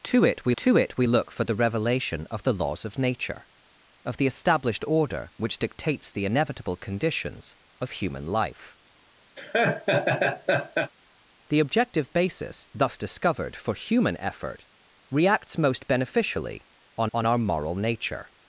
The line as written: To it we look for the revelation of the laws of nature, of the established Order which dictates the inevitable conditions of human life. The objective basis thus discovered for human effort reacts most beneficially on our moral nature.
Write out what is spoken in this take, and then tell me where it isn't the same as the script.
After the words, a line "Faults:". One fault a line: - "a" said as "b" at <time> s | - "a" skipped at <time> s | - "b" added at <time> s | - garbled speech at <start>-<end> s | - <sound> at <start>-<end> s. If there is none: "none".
To it we to it we look for the revelation of the laws of nature, of the established Order which dictates the inevitable conditions of human life. The objective basis thus discovered for human effort reacts most beneficially on on our moral nature.
Faults:
- "to it we" added at 0.6 s
- laugh at 9.4-10.9 s
- "on" added at 17.1 s